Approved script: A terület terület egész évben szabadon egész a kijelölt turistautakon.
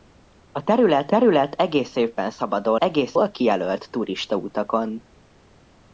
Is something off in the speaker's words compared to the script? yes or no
no